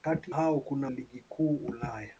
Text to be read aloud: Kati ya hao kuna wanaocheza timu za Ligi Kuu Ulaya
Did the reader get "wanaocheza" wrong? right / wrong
wrong